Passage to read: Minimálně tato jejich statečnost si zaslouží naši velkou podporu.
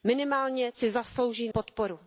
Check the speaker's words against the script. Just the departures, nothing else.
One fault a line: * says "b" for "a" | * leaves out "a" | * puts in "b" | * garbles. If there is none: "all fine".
* leaves out "tato jejich statečnost"
* leaves out "naši velkou"